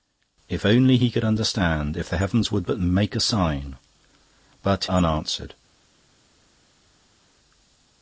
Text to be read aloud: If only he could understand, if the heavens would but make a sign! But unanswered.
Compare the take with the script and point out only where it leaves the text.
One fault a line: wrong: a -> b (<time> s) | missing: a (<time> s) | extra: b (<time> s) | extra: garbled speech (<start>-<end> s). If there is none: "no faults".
no faults